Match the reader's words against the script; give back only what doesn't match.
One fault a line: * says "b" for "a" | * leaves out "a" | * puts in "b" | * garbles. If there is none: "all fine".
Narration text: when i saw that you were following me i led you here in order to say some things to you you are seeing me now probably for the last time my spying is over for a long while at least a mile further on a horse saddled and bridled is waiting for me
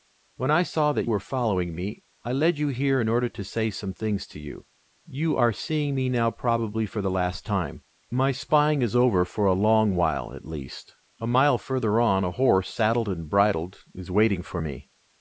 * leaves out "you"